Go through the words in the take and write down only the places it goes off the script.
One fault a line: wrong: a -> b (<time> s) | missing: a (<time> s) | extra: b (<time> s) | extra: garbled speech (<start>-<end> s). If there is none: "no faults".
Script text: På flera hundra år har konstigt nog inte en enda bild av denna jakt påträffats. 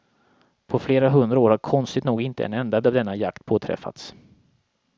missing: bild (2.8 s)